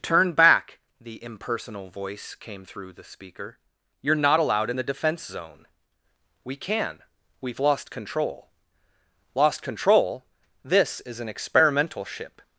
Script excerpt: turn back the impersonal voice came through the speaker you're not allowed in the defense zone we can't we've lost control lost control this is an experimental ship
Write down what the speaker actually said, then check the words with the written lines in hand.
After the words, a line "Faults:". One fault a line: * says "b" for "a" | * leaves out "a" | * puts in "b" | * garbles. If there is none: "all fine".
turn back the impersonal voice came through the speaker you're not allowed in the defense zone we can we've lost control lost control this is an experimental ship
Faults:
* says "can" for "can't"